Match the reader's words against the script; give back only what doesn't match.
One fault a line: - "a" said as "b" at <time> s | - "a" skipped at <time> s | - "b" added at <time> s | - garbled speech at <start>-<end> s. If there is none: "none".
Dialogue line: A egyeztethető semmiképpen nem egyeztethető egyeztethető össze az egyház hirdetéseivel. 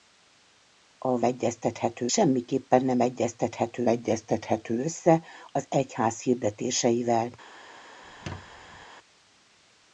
none